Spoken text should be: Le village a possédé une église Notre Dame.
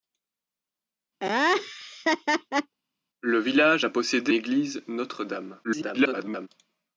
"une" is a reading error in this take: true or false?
true